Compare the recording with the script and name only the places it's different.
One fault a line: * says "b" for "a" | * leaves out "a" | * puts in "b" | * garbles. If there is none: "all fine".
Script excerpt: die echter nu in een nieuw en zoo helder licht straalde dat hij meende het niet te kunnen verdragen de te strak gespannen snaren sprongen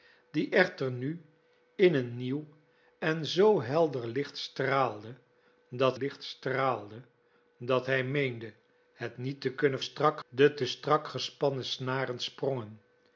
* puts in "licht straalde dat"
* says "strak" for "verdragen"